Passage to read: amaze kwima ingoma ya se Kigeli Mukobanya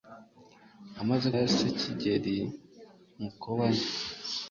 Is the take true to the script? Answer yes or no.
no